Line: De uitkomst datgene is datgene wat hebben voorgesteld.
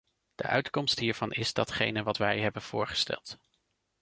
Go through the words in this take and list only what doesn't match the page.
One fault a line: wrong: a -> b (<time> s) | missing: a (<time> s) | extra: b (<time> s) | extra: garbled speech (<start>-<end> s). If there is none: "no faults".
wrong: datgene -> hiervan (1.0 s)
extra: wij (2.2 s)